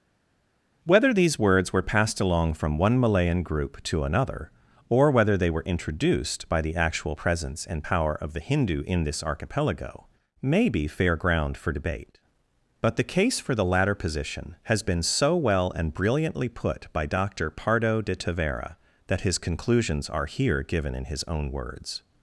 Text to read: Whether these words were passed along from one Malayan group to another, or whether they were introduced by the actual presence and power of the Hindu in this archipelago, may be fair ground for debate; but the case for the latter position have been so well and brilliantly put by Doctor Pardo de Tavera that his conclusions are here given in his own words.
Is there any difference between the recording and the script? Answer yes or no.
yes